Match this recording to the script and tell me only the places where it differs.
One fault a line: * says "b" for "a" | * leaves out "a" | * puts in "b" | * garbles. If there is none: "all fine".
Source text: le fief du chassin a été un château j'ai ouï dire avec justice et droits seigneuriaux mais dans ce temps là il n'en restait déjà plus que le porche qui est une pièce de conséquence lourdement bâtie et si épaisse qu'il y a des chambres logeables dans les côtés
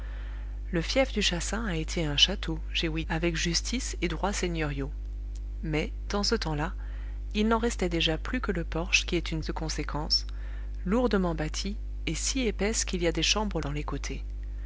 * leaves out "dire"
* leaves out "pièce"
* leaves out "logeables"